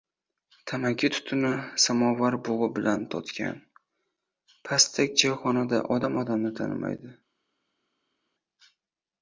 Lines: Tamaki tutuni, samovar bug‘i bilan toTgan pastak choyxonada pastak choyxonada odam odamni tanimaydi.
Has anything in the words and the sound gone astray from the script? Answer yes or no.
yes